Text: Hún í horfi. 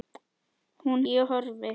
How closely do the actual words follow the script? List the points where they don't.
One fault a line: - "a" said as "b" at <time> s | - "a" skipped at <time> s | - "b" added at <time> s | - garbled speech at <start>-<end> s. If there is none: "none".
none